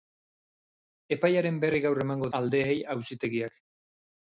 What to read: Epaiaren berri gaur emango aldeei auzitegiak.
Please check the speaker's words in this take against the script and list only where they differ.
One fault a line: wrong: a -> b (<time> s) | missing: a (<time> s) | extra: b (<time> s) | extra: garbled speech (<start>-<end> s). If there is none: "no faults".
no faults